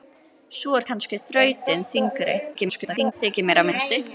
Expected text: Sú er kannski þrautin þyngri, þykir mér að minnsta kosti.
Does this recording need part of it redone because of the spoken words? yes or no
yes